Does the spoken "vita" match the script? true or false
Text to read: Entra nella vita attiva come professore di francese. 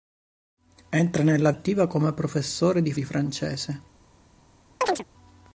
false